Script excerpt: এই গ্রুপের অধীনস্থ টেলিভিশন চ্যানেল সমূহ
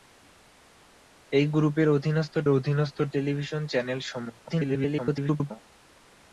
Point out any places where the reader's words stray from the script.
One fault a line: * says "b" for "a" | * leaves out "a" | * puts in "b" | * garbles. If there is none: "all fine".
* puts in "অধীনস্থ"
* garbles